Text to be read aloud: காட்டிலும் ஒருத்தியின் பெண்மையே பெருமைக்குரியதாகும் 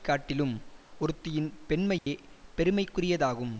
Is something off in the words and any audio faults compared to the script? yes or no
yes